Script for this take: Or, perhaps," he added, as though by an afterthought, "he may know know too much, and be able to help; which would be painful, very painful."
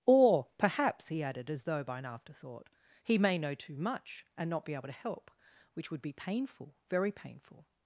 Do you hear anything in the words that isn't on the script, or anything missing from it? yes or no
yes